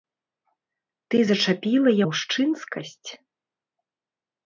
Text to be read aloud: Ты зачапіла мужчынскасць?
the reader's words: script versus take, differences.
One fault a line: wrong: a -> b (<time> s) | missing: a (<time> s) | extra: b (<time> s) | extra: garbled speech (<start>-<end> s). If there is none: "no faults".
no faults